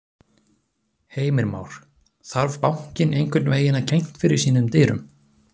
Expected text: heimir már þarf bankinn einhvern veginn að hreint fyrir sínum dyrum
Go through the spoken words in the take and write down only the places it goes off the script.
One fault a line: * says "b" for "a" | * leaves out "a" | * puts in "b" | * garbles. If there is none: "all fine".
all fine